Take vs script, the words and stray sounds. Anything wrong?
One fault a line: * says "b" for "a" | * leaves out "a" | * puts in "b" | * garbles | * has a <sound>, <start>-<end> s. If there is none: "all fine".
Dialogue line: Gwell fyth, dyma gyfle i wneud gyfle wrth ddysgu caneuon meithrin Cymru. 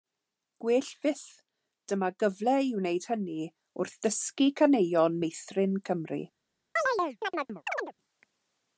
* says "hynny" for "gyfle"
* has a chirp, 6.8-7.9 s